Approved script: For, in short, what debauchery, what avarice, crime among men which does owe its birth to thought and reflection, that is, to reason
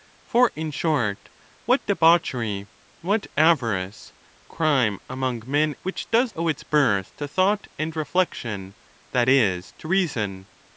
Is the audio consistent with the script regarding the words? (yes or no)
yes